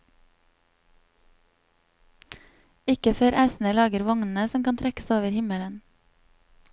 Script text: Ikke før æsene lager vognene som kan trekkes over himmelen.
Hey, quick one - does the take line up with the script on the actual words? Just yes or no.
yes